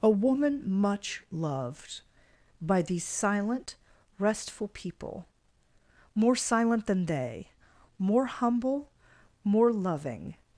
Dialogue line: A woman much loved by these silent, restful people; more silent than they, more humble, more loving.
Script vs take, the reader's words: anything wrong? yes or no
no